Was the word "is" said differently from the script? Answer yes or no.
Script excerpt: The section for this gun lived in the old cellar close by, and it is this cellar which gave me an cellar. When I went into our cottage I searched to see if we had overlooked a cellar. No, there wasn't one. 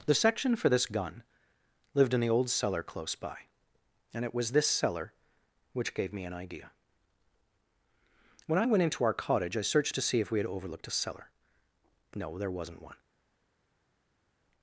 yes